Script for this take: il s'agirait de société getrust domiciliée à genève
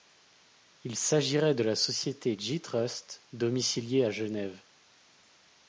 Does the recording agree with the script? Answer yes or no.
no